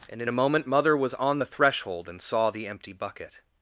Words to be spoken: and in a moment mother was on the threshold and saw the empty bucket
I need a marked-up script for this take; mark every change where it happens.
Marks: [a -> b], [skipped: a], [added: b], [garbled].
and in a moment mother was on the threshold and saw the empty bucket